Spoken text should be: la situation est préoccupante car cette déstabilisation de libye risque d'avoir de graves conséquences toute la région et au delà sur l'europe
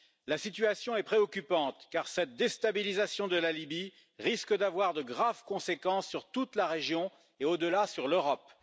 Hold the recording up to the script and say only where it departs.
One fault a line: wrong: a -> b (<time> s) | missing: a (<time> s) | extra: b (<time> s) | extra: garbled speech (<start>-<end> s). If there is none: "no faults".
extra: la (3.4 s)
extra: sur (6.1 s)